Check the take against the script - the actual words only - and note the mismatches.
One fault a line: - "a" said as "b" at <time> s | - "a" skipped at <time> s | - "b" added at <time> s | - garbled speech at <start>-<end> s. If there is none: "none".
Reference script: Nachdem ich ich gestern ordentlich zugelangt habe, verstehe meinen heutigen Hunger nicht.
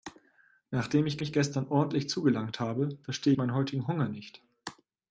none